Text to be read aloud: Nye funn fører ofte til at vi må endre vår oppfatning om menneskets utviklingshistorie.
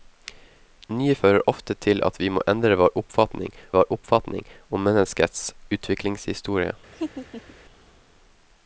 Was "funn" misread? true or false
true